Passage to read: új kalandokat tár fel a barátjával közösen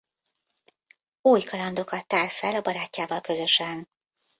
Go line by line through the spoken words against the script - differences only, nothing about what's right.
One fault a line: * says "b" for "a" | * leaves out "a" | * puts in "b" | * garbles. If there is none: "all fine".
all fine